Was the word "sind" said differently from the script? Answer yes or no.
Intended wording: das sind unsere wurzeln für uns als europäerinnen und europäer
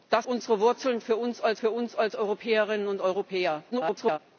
yes